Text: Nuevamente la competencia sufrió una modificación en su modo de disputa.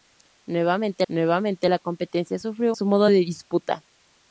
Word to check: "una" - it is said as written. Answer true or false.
false